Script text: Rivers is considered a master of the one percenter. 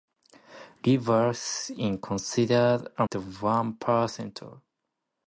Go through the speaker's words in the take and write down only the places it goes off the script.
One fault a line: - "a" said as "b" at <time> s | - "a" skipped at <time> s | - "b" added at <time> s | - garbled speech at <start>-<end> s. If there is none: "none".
- "master of" skipped at 3.1 s